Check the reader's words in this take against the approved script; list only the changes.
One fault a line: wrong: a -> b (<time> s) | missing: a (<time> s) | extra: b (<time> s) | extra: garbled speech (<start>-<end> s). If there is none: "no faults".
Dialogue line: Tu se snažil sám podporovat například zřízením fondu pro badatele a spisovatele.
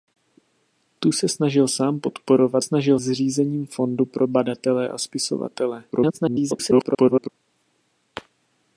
wrong: například -> snažil (2.6 s)
extra: garbled speech (5.9-7.3 s)